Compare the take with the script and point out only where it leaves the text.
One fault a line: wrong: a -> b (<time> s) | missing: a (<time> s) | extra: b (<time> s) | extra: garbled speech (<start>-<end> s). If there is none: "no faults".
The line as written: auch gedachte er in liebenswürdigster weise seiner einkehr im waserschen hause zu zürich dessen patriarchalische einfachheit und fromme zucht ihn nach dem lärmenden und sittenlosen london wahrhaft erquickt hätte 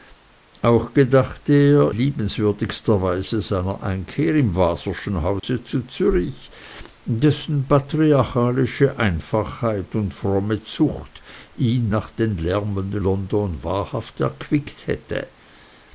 missing: in (1.9 s)
missing: und sittenlosen (13.0 s)